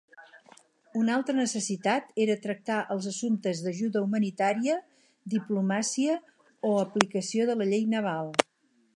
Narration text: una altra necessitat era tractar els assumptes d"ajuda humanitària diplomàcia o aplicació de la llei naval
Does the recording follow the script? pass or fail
pass